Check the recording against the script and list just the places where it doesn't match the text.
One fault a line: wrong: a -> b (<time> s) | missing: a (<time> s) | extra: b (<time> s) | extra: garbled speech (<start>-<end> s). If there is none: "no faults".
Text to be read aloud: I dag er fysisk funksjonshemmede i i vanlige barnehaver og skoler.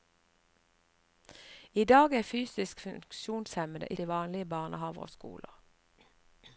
no faults